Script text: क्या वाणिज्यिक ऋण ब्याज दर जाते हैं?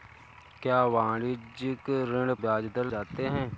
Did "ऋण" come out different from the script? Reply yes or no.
no